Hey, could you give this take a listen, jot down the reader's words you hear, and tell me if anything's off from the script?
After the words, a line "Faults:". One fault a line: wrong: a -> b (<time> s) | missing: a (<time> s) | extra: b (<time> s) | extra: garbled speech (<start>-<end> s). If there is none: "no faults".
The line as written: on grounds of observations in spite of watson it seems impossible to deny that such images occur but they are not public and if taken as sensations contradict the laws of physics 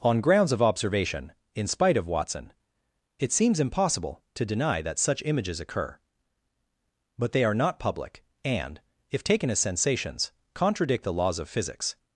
on grounds of observation in spite of watson it seems impossible to deny that such images occur but they are not public and if taken as sensations contradict the laws of physics
Faults:
wrong: observations -> observation (0.6 s)